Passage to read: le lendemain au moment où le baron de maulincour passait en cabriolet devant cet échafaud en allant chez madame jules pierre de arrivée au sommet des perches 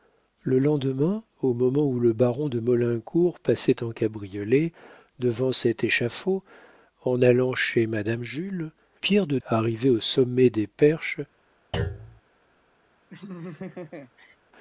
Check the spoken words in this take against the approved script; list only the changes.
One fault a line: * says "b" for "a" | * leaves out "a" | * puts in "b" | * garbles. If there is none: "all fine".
all fine